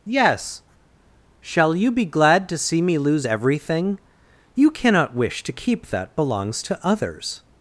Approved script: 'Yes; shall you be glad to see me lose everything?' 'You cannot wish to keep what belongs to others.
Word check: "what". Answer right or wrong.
wrong